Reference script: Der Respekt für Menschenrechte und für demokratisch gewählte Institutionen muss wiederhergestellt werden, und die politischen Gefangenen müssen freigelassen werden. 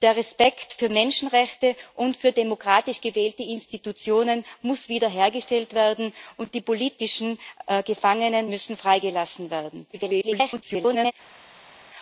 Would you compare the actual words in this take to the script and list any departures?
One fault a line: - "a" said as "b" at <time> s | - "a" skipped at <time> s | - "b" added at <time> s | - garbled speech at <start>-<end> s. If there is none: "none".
- garbled speech at 9.9-11.1 s